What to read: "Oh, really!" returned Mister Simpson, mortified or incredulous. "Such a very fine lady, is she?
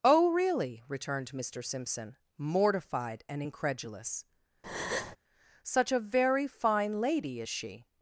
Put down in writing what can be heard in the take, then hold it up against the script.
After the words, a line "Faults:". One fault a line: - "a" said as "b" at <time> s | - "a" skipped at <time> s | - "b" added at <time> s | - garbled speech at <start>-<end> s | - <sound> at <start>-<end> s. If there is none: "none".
"Oh, really!" returned Mister Simpson, mortified and incredulous. "Such a very fine lady, is she?
Faults:
- "or" said as "and" at 3.3 s
- breath at 4.6-5.2 s